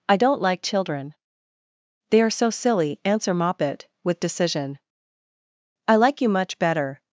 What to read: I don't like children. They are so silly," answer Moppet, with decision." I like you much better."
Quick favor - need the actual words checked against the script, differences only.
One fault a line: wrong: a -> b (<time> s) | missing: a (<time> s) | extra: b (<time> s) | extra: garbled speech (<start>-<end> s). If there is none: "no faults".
no faults